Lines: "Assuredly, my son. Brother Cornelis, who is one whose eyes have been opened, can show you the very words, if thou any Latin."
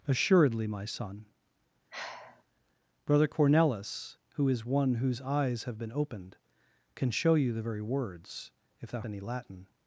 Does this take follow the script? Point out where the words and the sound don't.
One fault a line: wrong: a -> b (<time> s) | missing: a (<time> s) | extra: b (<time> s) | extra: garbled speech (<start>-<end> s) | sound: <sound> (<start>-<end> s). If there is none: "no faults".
sound: sigh (1.9-2.4 s)